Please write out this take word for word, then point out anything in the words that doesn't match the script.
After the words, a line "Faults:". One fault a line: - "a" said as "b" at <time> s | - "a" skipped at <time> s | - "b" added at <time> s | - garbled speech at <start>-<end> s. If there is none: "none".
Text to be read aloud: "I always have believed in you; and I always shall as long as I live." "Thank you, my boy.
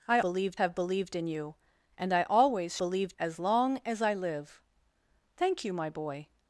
"I believed have believed in you; and I always believed as long as I live." "Thank you, my boy.
Faults:
- "always" said as "believed" at 0.2 s
- "shall" said as "believed" at 2.8 s